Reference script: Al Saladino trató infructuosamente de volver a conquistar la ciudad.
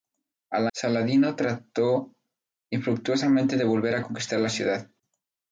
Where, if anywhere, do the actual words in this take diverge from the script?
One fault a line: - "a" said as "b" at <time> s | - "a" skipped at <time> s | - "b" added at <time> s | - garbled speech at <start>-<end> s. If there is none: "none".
none